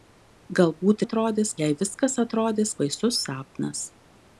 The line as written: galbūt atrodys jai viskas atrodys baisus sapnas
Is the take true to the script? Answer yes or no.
yes